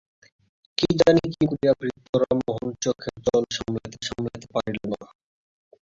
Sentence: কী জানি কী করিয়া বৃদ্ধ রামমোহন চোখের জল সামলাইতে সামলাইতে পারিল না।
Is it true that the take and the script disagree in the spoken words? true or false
false